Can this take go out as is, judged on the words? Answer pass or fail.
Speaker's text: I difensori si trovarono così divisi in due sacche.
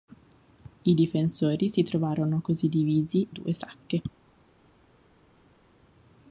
fail